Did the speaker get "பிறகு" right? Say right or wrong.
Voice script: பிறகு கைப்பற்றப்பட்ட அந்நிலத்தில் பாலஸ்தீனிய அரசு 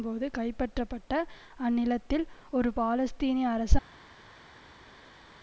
wrong